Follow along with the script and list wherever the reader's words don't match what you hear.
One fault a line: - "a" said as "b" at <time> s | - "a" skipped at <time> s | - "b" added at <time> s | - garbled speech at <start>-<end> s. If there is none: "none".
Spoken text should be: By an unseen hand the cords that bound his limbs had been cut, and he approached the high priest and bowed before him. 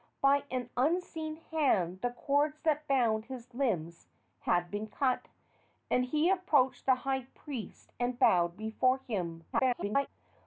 - garbled speech at 9.5-10.1 s